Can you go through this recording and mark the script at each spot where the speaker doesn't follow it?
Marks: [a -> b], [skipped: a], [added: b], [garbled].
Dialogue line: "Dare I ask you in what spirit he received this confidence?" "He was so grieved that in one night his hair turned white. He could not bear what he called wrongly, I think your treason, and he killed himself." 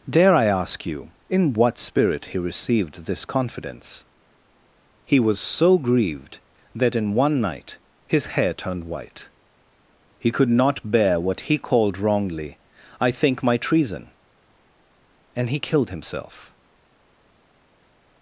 "Dare I ask you in what spirit he received this confidence?" "He was so grieved that in one night his hair turned white. He could not bear what he called wrongly, I think [your -> my] treason, and he killed himself."